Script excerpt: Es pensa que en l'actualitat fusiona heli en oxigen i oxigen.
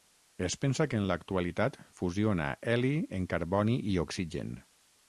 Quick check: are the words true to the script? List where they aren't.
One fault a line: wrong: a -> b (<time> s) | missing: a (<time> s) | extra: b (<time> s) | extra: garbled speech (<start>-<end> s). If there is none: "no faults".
wrong: oxigen -> carboni (3.3 s)